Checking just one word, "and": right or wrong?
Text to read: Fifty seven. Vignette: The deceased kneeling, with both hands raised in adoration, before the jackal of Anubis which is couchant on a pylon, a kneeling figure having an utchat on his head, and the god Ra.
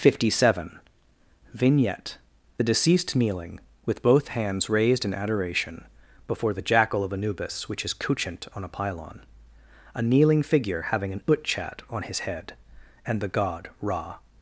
right